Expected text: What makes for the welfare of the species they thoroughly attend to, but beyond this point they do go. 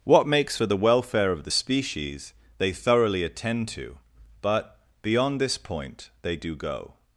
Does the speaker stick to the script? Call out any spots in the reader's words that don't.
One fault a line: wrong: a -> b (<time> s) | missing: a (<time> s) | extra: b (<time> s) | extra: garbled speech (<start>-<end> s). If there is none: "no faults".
no faults